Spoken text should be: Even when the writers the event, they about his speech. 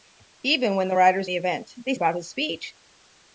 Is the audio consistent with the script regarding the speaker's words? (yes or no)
yes